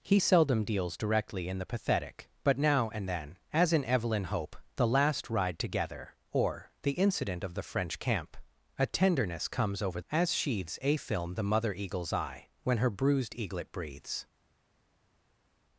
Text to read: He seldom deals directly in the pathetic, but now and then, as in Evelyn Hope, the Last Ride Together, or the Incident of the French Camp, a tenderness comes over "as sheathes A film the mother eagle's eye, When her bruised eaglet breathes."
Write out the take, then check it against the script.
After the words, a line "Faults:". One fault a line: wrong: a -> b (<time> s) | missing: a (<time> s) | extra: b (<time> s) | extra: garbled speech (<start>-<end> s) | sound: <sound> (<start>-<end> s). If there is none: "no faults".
He seldom deals directly in the pathetic, but now and then, as in Evelyn Hope, the Last Ride Together, or the Incident of the French Camp, a tenderness comes over "as sheathes A film the mother eagle's eye, When her bruised eaglet breathes."
Faults:
no faults